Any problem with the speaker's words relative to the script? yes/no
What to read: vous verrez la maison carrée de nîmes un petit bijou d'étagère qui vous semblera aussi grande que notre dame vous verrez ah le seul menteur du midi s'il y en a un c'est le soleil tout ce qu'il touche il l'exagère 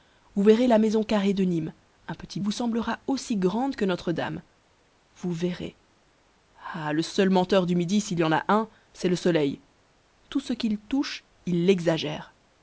yes